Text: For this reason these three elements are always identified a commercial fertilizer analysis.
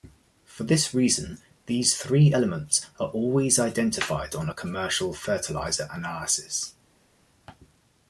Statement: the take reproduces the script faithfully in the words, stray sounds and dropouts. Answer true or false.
false